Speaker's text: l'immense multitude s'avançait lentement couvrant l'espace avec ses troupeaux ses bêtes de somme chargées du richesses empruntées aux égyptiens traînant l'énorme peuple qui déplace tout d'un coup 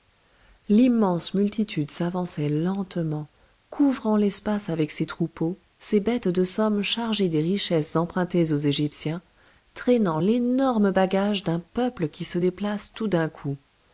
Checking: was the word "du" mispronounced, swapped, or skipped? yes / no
yes